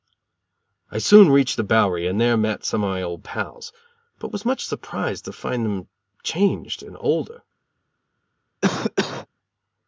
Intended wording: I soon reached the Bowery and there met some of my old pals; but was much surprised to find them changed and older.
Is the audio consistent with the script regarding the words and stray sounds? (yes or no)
no